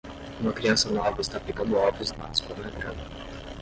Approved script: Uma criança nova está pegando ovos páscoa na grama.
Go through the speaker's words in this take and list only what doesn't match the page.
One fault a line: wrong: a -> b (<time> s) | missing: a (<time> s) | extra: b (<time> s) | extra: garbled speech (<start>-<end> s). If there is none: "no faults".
no faults